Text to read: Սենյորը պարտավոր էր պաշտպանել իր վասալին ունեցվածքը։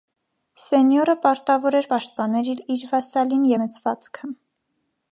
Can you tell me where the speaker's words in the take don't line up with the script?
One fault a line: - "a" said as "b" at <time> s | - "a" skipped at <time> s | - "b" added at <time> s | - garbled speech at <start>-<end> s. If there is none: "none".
none